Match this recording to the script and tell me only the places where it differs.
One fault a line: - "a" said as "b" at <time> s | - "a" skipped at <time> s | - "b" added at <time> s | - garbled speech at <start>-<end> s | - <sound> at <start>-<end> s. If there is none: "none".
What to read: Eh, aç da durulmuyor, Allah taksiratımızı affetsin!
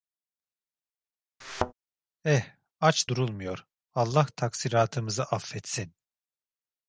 - thud at 1.4-1.7 s
- "da" skipped at 3.1 s